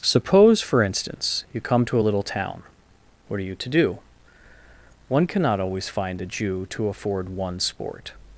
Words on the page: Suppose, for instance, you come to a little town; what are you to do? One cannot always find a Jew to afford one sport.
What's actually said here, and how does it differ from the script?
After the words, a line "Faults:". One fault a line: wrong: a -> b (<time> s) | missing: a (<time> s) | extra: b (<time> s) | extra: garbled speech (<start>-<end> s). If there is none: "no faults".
Suppose, for instance, you come to a little town; what are you to do? One cannot always find a Jew to afford one sport.
Faults:
no faults